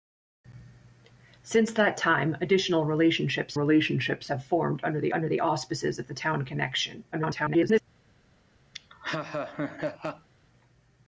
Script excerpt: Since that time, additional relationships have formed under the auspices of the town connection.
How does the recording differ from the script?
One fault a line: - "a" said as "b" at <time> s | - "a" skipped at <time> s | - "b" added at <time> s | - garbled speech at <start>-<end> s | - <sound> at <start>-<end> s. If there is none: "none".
- "relationships" added at 3.5 s
- "under the" added at 5.1 s
- garbled speech at 7.1-7.8 s
- laugh at 8.7-10.3 s